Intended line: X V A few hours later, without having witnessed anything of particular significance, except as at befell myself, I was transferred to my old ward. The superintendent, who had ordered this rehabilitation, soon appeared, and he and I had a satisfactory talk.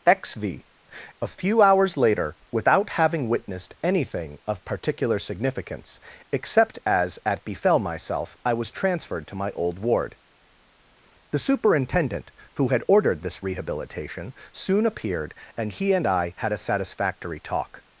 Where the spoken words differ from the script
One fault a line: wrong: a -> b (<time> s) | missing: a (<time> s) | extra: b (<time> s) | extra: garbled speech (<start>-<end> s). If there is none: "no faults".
no faults